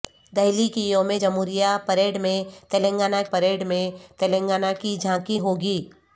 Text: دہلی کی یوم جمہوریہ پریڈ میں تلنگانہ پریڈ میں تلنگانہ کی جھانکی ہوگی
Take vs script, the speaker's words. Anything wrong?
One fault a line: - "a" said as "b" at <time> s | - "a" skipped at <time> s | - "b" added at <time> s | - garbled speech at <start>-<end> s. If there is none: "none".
none